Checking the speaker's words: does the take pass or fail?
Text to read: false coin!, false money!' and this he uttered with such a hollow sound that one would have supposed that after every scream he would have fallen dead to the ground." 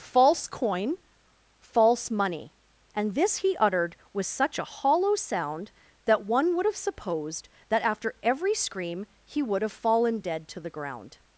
pass